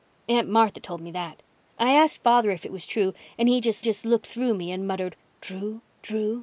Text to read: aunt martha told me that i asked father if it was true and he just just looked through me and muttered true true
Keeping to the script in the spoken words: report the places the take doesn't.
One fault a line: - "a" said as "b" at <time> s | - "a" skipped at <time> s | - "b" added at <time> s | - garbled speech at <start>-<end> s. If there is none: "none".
none